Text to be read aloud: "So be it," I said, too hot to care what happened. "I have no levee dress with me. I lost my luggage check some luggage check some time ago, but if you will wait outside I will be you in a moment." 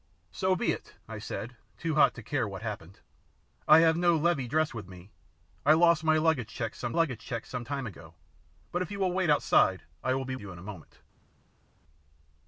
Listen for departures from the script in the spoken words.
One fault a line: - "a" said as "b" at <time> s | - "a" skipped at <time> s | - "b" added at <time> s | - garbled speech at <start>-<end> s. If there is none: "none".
none